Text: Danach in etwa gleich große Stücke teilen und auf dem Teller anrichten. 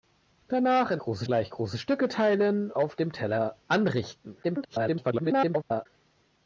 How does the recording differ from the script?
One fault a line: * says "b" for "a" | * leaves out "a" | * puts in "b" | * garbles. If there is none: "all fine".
* says "große" for "etwa"
* leaves out "und"
* garbles